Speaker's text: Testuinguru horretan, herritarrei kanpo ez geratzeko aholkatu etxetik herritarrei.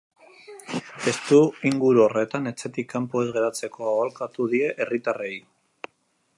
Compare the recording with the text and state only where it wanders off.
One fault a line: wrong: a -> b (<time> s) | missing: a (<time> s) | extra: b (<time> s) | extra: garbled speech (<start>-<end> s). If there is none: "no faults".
wrong: herritarrei -> etxetik (2.5 s)
wrong: etxetik -> die (4.6 s)